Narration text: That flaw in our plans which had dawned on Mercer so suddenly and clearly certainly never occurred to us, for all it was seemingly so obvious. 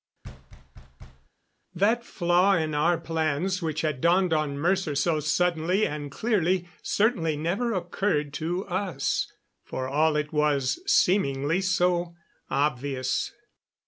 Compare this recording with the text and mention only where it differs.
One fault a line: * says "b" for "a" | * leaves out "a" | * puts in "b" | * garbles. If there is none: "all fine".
all fine